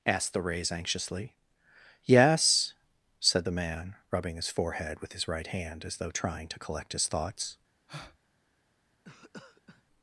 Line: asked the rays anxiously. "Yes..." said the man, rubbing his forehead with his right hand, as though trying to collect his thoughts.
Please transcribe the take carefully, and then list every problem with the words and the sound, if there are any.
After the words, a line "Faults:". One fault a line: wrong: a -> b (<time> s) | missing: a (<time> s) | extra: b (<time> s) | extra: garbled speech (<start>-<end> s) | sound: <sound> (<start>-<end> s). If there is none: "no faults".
asked the rays anxiously. "Yes..." said the man, rubbing his forehead with his right hand, as though trying to collect his thoughts.
Faults:
sound: breath (7.9-8.2 s)
sound: cough (9.0-9.8 s)